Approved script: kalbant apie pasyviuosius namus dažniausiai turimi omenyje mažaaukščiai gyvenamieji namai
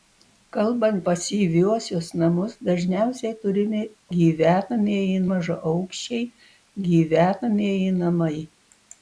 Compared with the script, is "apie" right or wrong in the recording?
wrong